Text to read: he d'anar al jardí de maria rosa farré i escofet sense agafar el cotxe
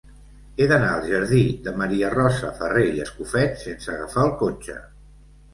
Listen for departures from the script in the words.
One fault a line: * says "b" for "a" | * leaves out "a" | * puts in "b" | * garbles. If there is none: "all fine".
all fine